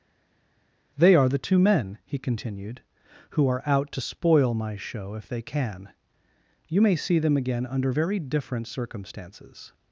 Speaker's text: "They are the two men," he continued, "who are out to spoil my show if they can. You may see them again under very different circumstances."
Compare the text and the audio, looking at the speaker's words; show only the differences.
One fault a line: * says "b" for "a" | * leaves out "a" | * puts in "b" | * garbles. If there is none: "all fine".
all fine